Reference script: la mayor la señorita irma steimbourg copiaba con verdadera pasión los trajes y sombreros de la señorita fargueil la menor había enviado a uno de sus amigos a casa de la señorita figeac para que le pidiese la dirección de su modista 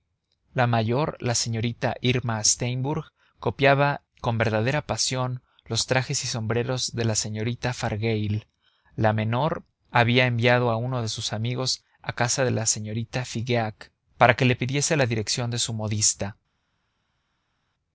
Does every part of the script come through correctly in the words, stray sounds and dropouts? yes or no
yes